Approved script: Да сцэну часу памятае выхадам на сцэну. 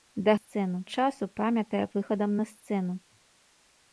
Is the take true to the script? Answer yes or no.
yes